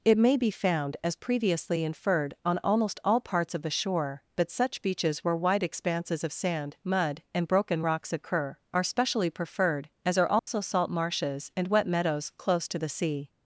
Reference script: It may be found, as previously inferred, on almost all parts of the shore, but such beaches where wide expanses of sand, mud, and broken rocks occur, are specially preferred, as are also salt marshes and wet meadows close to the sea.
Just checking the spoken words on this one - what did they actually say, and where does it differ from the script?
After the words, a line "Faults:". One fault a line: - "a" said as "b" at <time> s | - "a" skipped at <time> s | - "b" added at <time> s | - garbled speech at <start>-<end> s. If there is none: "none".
It may be found, as previously inferred, on almost all parts of the shore, but such beaches where wide expanses of sand, mud, and broken rocks occur, are specially preferred, as are also salt marshes and wet meadows close to the sea.
Faults:
none